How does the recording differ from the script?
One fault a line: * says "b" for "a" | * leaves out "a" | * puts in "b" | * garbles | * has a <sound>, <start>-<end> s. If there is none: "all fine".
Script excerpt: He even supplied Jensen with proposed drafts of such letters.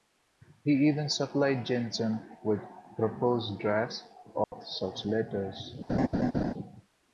* has a dropout, 4.4-4.5 s
* has a laugh, 5.9-6.5 s